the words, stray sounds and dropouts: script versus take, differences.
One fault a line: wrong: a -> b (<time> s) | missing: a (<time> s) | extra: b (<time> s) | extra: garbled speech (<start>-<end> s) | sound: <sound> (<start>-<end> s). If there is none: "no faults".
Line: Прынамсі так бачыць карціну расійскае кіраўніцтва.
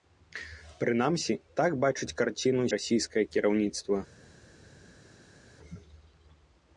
no faults